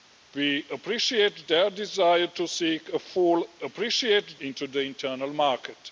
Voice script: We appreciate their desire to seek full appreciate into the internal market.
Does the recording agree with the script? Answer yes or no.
yes